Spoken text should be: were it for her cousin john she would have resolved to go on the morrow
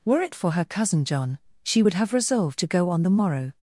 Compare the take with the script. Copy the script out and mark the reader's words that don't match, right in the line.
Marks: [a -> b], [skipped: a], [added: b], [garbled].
were it for her cousin john she would have resolved to go on the morrow